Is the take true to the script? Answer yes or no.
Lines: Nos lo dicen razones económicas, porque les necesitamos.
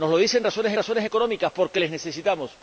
no